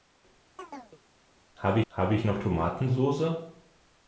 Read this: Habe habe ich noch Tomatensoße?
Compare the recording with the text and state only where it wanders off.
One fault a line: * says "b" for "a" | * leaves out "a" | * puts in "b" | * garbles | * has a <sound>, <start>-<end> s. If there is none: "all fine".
* has a chirp, 0.6-1.0 s